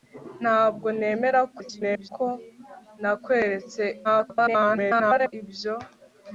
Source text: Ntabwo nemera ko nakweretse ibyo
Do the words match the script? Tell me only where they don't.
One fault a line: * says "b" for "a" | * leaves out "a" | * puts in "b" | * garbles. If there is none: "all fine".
* garbles
* garbles